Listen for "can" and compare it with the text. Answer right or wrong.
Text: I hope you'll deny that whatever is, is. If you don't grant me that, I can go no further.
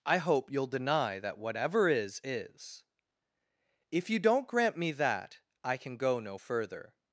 right